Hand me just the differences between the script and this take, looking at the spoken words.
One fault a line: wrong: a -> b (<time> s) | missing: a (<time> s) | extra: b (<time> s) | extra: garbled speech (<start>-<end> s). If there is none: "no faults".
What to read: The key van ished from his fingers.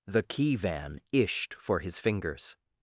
wrong: from -> for (1.5 s)